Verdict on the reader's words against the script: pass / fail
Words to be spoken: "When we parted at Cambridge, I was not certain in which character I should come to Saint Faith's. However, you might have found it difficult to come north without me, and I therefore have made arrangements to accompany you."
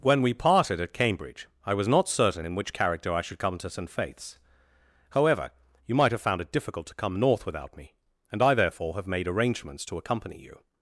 pass